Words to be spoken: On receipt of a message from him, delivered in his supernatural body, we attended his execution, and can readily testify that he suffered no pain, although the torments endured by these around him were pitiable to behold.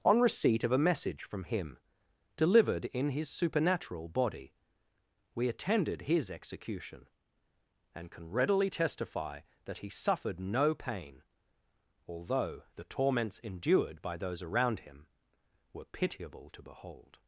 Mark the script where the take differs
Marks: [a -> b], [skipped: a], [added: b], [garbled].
On receipt of a message from him, delivered in his supernatural body, we attended his execution, and can readily testify that he suffered no pain, although the torments endured by [these -> those] around him were pitiable to behold.